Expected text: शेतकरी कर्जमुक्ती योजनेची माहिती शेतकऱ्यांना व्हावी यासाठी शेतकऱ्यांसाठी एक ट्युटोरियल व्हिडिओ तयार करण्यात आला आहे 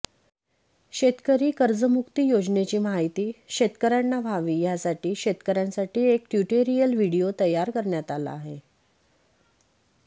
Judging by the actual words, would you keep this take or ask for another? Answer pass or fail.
pass